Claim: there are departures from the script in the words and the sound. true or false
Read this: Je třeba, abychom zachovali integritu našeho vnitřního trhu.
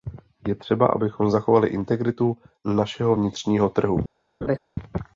true